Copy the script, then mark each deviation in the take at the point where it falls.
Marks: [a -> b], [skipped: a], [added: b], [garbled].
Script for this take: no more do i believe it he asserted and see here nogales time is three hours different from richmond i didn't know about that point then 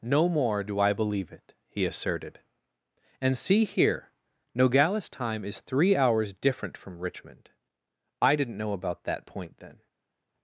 no more do i believe it he asserted and see here nogales time is three hours different from richmond i didn't know about that point then